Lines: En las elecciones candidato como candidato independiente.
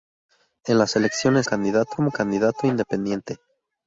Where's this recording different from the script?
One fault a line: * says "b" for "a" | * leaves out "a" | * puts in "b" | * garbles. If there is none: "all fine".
all fine